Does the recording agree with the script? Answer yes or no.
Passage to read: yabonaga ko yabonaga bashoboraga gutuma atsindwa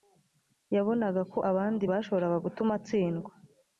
no